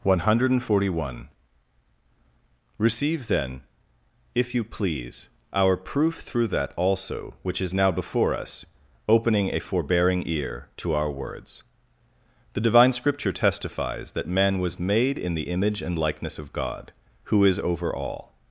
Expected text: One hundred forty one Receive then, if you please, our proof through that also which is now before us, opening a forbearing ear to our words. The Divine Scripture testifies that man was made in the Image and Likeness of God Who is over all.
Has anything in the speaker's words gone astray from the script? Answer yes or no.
no